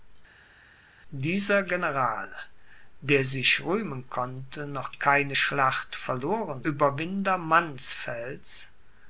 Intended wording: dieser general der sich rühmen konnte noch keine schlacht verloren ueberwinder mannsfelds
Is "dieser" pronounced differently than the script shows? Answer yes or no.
no